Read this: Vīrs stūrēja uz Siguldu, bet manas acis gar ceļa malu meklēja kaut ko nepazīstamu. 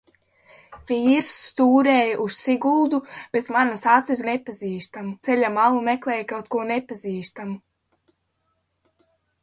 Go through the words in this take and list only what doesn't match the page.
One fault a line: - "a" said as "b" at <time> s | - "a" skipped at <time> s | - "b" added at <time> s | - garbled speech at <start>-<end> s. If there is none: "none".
- "gar" said as "nepazīstamu" at 4.3 s